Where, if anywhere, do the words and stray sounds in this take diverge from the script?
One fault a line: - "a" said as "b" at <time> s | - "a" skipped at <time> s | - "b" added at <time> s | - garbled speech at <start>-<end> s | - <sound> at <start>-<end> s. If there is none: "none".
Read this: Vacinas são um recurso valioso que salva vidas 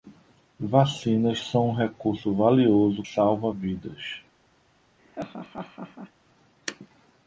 - "que" skipped at 3.0 s
- laugh at 5.0-6.1 s